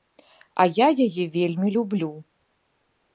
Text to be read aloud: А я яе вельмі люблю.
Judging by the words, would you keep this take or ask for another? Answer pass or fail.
pass